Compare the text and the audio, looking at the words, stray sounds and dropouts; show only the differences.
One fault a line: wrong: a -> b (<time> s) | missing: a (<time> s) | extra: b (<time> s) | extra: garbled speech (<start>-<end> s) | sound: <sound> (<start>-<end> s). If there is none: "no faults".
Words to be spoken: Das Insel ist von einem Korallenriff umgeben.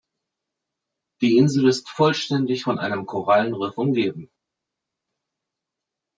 wrong: Das -> Die (1.2 s)
extra: vollständig (1.9 s)